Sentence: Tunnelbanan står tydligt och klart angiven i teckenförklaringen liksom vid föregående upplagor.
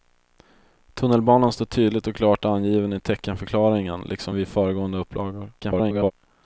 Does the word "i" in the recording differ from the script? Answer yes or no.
no